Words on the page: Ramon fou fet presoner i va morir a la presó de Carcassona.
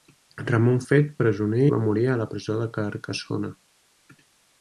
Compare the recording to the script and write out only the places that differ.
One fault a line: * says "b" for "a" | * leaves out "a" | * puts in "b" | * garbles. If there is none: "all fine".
* leaves out "fou"
* leaves out "i"